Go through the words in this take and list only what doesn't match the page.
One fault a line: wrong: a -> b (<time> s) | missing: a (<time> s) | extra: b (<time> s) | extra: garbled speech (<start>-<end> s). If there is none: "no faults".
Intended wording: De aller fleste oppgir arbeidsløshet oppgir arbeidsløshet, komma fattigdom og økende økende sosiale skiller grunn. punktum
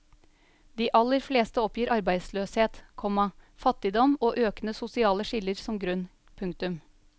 missing: oppgir arbeidsløshet (2.8 s)
missing: økende (4.8 s)
extra: som (5.7 s)